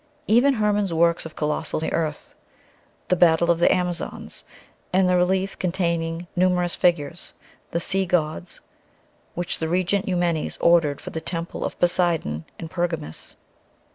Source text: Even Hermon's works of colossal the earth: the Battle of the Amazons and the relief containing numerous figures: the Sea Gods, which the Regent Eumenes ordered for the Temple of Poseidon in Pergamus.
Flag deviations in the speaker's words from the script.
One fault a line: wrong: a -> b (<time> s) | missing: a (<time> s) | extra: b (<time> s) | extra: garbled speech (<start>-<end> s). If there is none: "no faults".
no faults